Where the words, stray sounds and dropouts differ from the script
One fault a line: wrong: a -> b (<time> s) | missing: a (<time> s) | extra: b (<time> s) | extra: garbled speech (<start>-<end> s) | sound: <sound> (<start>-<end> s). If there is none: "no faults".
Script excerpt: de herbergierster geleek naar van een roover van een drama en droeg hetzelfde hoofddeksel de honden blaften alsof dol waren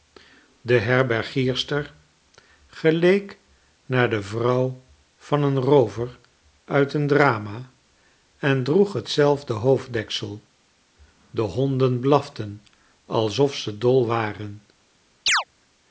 extra: de vrouw (4.1 s)
wrong: van -> uit (6.7 s)
extra: ze (13.6 s)
sound: chirp (15.3-15.4 s)